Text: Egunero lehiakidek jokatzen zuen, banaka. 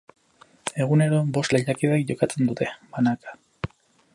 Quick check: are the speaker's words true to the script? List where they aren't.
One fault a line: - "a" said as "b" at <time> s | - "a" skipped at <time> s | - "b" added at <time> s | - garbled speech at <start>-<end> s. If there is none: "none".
- "bost" added at 1.4 s
- "zuen" said as "dute" at 2.5 s